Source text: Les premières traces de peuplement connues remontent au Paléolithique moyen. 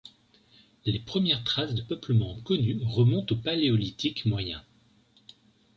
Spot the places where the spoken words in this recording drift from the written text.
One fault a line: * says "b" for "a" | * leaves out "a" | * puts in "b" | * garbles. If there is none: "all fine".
all fine